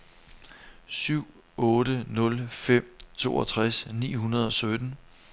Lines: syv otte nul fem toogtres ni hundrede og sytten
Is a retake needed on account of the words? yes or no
no